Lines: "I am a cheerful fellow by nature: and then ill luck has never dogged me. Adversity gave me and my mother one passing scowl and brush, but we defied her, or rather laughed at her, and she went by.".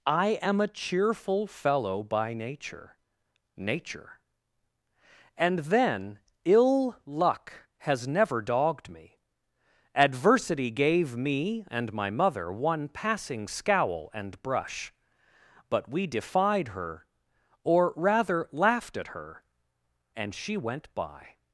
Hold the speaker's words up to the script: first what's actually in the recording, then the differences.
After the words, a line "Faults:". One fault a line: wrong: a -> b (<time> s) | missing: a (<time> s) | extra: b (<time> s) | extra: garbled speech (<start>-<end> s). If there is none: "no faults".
"I am a cheerful fellow by nature nature: and then ill luck has never dogged me. Adversity gave me and my mother one passing scowl and brush, but we defied her, or rather laughed at her, and she went by.".
Faults:
extra: nature (3.6 s)